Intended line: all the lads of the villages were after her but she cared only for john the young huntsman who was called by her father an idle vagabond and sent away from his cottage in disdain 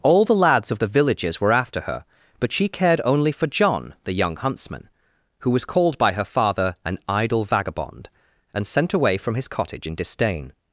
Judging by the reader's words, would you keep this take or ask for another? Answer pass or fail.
pass